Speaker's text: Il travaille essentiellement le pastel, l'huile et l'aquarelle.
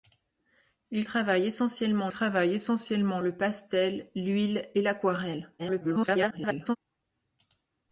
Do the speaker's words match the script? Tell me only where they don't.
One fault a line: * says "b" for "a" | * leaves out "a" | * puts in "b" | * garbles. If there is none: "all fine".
* puts in "travaille essentiellement"
* garbles